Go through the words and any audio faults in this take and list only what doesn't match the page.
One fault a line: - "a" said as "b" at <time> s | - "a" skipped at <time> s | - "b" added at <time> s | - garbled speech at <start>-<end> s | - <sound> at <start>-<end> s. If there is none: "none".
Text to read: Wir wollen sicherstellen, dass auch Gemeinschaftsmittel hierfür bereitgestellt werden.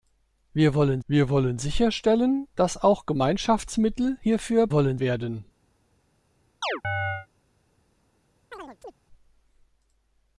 - "wir wollen" added at 1.1 s
- "bereitgestellt" said as "wollen" at 4.7 s
- chirp at 6.6-7.3 s
- chirp at 8.5-8.9 s